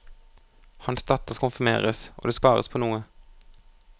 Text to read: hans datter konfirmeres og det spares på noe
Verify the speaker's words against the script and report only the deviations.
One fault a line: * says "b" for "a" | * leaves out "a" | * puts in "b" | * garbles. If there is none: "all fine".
all fine